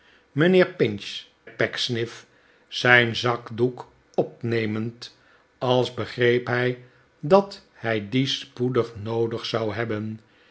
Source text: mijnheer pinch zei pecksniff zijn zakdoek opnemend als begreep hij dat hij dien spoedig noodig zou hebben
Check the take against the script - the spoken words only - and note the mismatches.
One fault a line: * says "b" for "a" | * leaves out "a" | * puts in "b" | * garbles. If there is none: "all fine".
* leaves out "zei"